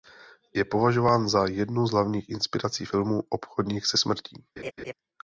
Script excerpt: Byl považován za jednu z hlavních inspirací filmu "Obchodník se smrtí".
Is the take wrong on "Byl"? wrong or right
wrong